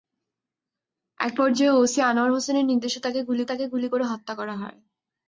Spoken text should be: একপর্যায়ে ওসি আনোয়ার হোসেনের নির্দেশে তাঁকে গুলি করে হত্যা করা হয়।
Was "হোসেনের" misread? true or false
false